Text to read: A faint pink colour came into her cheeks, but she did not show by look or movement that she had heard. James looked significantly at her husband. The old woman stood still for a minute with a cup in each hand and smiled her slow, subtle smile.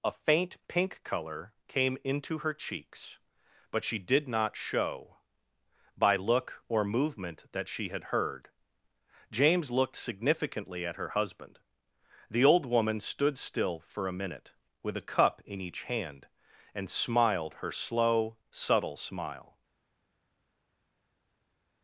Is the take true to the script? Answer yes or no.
yes